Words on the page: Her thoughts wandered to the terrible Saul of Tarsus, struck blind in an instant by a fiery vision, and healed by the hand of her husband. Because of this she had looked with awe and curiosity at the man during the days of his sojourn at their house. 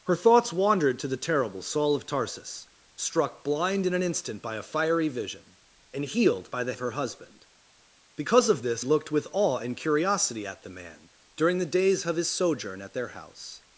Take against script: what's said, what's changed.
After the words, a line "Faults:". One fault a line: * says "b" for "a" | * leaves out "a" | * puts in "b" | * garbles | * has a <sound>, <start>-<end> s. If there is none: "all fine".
Her thoughts wandered to the terrible Saul of Tarsus, struck blind in an instant by a fiery vision, and healed by the of her husband. Because of this looked with awe and curiosity at the man during the days of his sojourn at their house.
Faults:
* leaves out "hand"
* leaves out "she had"